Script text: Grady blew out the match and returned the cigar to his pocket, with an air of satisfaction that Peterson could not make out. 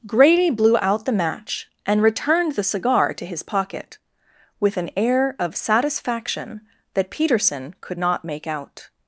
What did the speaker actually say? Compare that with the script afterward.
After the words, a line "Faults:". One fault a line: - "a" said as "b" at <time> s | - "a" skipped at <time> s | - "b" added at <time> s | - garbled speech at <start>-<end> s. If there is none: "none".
Grady blew out the match and returned the cigar to his pocket, with an air of satisfaction that Peterson could not make out.
Faults:
none